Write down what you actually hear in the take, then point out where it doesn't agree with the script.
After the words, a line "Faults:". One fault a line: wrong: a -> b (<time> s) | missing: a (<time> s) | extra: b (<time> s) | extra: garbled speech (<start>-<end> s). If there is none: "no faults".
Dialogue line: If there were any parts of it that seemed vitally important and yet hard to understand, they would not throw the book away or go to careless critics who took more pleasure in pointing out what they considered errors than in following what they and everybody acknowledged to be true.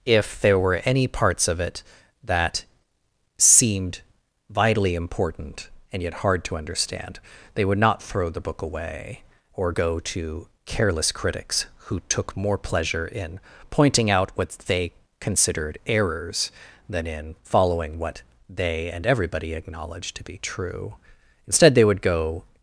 If there were any parts of it that seemed vitally important and yet hard to understand, they would not throw the book away or go to careless critics who took more pleasure in pointing out what they considered errors than in following what they and everybody acknowledged to be true. Instead, they would go
Faults:
extra: Instead they would go (21.5 s)